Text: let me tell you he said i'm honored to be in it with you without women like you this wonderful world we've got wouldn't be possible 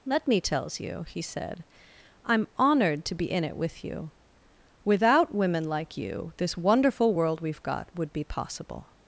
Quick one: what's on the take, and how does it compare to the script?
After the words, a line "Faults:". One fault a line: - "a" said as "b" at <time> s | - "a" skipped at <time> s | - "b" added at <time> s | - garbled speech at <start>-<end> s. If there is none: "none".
let me tells you he said i'm honored to be in it with you without women like you this wonderful world we've got would be possible
Faults:
- "tell" said as "tells" at 0.4 s
- "wouldn't" said as "would" at 7.9 s